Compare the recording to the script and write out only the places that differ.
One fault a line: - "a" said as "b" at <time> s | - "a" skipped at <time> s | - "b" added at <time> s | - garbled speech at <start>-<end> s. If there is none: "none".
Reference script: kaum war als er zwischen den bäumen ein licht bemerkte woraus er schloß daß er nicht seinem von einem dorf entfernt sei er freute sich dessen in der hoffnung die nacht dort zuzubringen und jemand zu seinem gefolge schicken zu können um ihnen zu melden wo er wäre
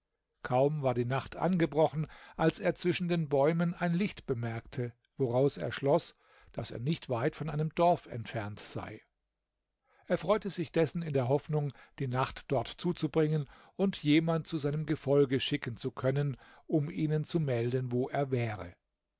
- "die nacht angebrochen" added at 0.9 s
- "seinem" said as "weit" at 7.1 s